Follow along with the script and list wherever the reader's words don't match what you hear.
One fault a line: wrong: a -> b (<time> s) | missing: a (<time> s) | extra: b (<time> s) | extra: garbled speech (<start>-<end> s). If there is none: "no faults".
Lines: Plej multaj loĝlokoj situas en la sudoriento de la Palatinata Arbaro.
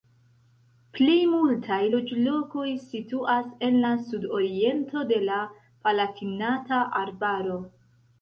no faults